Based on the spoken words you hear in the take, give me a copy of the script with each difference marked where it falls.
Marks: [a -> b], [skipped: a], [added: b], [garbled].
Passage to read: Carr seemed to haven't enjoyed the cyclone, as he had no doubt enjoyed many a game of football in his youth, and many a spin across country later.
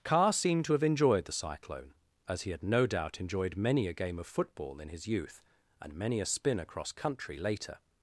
Carr seemed to [haven't -> have] enjoyed the cyclone, as he had no doubt enjoyed many a game of football in his youth, and many a spin across country later.